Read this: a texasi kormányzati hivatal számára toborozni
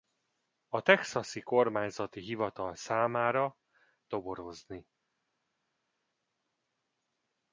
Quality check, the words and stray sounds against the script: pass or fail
pass